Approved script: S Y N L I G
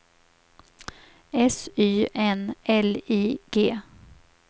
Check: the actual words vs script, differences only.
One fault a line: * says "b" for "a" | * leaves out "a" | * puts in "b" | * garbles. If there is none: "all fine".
all fine